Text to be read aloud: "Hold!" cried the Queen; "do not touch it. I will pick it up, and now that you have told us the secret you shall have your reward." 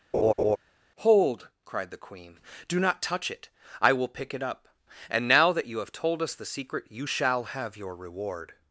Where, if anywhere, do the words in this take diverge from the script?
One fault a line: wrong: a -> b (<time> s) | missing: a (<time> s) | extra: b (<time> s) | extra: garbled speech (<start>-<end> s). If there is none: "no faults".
no faults